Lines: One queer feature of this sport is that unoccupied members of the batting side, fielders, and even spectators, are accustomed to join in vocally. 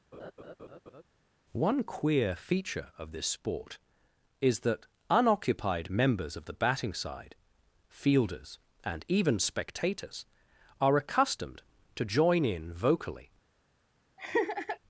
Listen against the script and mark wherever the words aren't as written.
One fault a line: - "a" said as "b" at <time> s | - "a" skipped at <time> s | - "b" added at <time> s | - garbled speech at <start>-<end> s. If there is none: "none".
none